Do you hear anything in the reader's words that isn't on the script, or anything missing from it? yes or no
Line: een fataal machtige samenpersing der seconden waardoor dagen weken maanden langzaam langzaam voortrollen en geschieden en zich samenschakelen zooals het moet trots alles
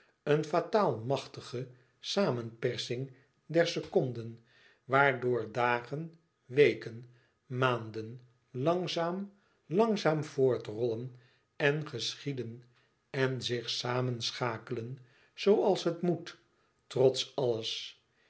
no